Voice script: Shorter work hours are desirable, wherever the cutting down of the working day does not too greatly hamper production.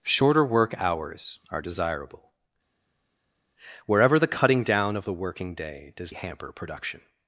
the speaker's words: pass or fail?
fail